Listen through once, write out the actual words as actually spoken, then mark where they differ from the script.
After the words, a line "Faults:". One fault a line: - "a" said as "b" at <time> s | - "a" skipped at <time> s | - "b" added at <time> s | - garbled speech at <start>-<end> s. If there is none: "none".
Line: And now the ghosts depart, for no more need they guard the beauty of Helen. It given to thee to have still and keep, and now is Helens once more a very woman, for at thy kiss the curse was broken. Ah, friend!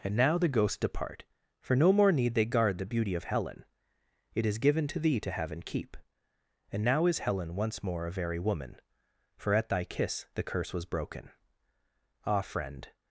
And now the ghosts depart, for no more need they guard the beauty of Helen. It is given to thee to have and keep, and now is Helen once more a very woman, for at thy kiss the curse was broken. Ah, friend!
Faults:
- "is" added at 4.5 s
- "still" skipped at 5.5 s
- "Helens" said as "Helen" at 7.2 s